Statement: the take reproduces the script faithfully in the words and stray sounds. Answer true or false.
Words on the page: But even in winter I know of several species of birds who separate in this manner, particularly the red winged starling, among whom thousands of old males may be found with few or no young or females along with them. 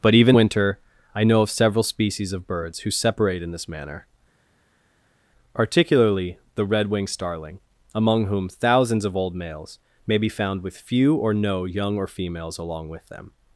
false